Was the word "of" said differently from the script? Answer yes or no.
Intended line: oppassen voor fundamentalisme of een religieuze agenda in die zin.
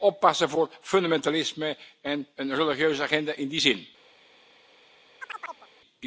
yes